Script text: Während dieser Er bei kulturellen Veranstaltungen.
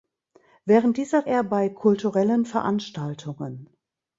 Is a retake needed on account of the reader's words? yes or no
no